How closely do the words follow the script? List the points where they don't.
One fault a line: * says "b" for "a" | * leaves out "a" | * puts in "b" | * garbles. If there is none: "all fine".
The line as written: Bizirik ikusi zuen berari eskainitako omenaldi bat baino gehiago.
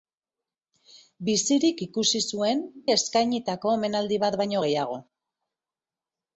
* leaves out "berari"